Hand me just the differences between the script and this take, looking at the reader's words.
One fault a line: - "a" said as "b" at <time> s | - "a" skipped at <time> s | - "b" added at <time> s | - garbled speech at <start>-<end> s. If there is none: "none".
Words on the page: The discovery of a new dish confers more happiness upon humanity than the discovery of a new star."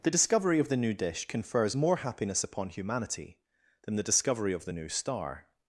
- "a" said as "the" at 0.7 s
- "a" said as "the" at 4.6 s